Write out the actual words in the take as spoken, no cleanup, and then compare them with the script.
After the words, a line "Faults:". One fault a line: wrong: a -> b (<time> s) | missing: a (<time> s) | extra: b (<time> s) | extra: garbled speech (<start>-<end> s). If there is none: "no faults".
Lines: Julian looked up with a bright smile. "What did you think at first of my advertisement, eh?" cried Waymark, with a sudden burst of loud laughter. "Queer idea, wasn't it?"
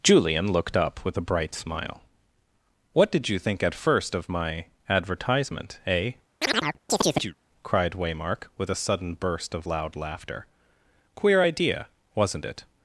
Julian looked up with a bright smile. "What did you think at first of my advertisement, eh?" cried Waymark, with a sudden burst of loud laughter. "Queer idea, wasn't it?"
Faults:
no faults